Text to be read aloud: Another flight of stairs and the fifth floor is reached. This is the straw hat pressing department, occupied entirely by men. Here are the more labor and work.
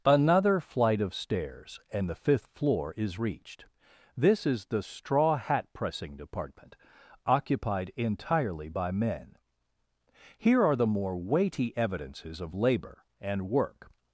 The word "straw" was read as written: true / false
true